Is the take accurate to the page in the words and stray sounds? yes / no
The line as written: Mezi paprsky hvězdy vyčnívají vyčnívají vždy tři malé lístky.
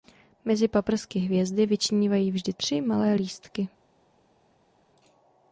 no